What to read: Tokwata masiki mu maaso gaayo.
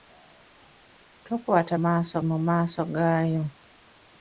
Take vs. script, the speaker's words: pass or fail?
fail